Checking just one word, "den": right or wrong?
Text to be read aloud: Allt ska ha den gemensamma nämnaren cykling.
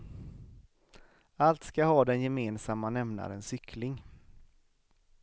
right